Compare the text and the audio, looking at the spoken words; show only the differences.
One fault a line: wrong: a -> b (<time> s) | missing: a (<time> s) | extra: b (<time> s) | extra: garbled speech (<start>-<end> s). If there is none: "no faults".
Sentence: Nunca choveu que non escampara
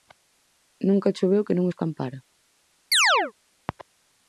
no faults